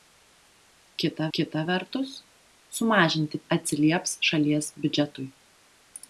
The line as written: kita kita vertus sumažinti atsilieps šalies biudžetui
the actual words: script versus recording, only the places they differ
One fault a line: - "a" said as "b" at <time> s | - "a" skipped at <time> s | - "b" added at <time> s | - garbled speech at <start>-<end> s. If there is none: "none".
none